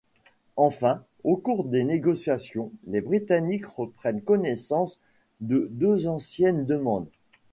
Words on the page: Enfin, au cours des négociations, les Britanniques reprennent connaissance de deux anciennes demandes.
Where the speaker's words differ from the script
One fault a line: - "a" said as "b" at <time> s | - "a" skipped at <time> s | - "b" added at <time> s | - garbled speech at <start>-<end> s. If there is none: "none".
none